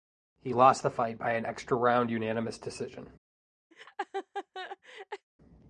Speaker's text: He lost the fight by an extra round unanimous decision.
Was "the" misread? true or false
false